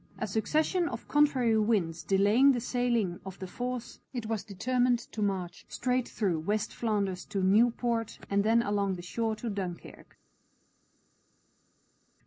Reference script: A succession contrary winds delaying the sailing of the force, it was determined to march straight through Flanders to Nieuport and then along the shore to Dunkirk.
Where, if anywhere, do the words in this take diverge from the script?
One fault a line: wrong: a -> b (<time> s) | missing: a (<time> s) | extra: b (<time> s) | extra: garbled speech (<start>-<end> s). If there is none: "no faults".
extra: of (0.9 s)
extra: West (6.4 s)